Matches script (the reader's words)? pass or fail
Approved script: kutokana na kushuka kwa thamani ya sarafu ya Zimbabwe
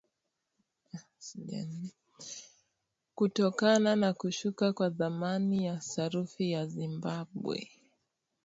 pass